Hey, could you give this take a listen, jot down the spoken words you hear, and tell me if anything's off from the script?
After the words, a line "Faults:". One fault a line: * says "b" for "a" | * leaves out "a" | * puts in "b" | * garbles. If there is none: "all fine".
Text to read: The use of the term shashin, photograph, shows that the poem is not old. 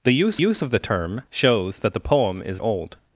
The use use of the term shows that the poem is old.
Faults:
* puts in "use"
* leaves out "shashin photograph"
* leaves out "not"